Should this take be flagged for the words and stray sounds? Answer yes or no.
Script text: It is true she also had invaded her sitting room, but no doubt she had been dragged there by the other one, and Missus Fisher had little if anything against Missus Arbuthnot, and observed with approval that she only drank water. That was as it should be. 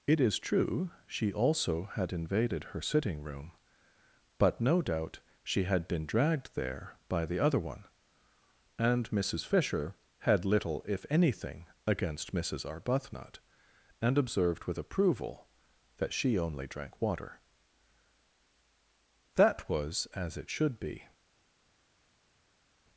no